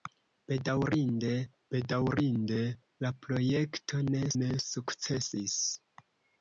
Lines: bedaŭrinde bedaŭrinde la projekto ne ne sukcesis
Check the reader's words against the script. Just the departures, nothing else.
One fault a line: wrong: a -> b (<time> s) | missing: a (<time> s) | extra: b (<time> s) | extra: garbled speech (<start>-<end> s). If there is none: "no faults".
no faults